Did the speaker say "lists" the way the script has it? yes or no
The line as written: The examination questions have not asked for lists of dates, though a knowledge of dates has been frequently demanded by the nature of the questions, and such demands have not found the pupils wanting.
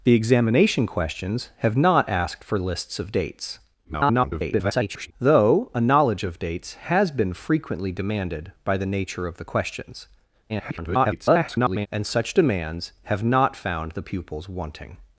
yes